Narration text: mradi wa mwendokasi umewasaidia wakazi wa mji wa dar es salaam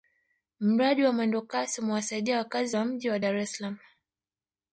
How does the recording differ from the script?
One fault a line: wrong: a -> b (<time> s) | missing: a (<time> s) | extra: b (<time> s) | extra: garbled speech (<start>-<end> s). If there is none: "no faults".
no faults